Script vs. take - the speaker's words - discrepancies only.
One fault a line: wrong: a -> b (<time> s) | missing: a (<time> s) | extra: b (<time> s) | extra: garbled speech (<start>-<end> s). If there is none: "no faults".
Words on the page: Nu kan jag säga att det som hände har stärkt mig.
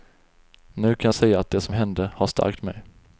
no faults